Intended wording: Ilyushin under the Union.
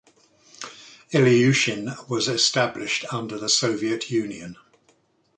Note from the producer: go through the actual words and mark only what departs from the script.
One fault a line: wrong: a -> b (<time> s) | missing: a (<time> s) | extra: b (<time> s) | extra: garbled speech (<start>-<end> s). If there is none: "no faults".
extra: was established (2.1 s)
extra: Soviet (3.5 s)